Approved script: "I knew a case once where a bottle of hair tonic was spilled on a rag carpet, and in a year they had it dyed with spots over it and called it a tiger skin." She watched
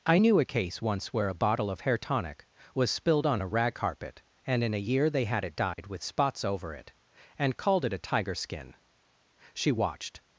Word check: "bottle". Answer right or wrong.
right